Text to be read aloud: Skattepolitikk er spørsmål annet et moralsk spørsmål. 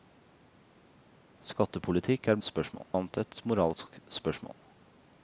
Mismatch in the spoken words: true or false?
false